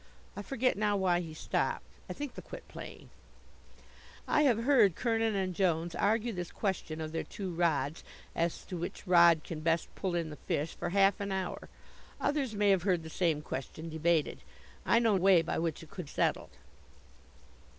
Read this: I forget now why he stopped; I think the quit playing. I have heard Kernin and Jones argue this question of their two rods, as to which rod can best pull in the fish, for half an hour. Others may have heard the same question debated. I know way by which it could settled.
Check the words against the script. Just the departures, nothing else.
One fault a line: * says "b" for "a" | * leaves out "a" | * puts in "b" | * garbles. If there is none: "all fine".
all fine